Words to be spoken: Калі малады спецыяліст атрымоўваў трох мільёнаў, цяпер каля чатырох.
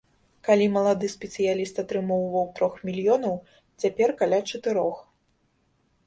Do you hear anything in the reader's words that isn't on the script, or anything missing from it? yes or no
no